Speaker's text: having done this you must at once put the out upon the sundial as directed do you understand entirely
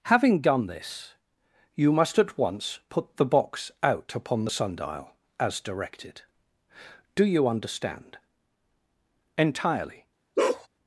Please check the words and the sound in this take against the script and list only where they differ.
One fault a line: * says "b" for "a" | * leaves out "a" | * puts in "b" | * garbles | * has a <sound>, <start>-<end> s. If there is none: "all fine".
* puts in "box"
* has a bark, 10.4-10.7 s